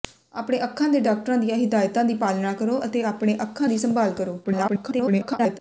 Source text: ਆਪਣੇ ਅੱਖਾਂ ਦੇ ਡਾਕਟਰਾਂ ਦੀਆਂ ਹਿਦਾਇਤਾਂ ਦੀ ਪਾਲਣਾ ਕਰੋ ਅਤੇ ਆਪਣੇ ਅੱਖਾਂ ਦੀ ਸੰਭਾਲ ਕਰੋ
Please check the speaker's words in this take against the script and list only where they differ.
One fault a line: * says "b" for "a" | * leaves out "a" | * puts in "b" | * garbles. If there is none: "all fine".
* garbles